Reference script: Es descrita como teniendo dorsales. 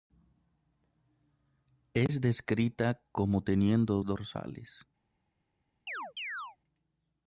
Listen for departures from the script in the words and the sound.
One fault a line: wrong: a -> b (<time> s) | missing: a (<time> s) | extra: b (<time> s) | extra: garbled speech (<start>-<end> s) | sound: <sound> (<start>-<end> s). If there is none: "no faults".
sound: chirp (5.9-6.6 s)